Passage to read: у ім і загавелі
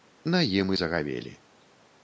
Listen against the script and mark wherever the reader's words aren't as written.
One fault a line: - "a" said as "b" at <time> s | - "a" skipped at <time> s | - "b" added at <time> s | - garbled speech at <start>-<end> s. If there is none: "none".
- "у" said as "на" at 0.2 s